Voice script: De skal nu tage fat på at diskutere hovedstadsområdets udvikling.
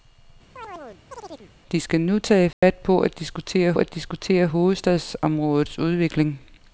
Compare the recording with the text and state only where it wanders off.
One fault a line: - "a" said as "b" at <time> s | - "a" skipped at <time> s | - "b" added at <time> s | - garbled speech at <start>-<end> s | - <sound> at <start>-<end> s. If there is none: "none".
- chirp at 0.6-1.5 s
- dropout at 2.5-2.6 s
- "at diskutere" added at 3.8 s